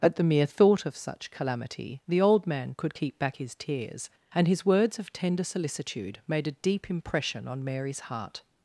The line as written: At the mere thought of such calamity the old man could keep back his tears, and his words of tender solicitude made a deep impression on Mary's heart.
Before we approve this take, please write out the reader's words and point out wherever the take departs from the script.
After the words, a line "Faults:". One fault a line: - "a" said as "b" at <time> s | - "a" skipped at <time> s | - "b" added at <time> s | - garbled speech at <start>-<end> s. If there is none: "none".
At the mere thought of such calamity the old man could keep back his tears, and his words of tender solicitude made a deep impression on Mary's heart.
Faults:
none